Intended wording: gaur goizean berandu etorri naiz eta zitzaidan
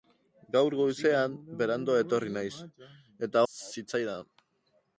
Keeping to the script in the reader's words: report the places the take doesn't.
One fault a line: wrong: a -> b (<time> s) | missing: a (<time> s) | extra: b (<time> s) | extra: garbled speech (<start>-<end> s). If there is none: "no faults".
no faults